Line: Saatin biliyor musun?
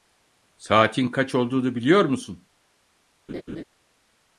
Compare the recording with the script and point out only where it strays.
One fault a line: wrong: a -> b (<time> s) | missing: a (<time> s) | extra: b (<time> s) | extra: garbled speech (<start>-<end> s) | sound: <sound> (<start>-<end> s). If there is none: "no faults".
extra: kaç olduğunu (1.1 s)
sound: laugh (3.3-3.6 s)